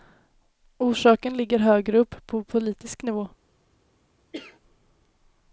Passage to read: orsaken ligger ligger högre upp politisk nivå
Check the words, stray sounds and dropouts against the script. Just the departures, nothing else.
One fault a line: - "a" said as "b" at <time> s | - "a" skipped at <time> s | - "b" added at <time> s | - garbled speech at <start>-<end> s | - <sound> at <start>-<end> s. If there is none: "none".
- "ligger" skipped at 1.6 s
- "på" added at 2.3 s
- cough at 4.3-4.6 s